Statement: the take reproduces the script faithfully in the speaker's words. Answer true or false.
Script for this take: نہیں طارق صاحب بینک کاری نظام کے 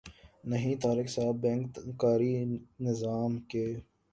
true